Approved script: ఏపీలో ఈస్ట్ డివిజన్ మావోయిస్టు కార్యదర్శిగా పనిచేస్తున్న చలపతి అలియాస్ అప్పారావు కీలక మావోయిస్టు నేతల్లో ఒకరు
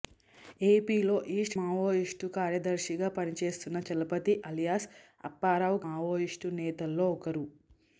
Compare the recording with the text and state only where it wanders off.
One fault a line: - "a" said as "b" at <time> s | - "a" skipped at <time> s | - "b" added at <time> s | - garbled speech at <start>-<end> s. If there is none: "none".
- "డివిజన్" skipped at 1.6 s
- "కీలక" skipped at 5.8 s